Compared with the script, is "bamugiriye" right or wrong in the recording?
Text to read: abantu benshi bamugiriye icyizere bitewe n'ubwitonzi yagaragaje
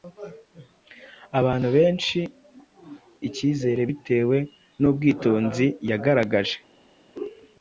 wrong